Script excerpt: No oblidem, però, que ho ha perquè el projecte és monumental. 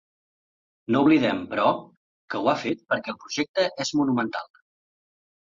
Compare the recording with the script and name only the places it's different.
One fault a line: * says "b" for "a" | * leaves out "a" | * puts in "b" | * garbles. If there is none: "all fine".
* puts in "fet"